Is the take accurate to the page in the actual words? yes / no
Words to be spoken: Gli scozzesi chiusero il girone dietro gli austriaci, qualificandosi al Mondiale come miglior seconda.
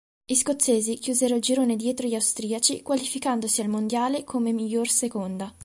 yes